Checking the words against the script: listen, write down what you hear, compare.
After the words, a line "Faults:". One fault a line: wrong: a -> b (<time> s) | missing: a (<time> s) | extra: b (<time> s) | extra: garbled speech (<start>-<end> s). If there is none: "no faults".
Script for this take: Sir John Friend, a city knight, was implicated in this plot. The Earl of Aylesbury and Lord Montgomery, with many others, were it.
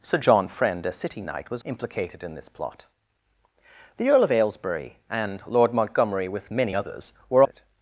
Sir John Friend, a city knight, was implicated in this plot. The Earl of Aylesbury and Lord Montgomery, with many others, were it.
Faults:
no faults